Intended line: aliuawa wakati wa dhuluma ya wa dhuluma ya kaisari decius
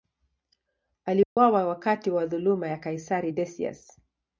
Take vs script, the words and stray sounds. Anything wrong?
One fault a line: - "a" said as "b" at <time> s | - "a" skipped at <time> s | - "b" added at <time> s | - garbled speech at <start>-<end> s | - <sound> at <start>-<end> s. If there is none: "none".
- dropout at 1.2-1.4 s
- "wa dhuluma ya" skipped at 2.8 s